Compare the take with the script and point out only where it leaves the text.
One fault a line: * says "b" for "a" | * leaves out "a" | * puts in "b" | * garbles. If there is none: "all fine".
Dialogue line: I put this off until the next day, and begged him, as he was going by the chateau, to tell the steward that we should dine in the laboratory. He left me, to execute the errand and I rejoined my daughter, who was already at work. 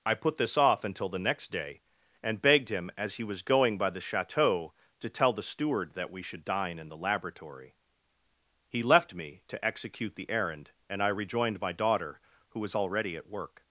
all fine